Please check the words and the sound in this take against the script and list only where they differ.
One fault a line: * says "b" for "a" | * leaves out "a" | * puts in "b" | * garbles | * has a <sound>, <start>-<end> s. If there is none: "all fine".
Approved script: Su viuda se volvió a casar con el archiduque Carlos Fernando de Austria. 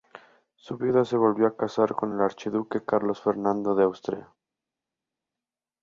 all fine